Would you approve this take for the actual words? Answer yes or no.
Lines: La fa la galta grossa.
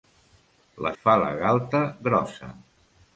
yes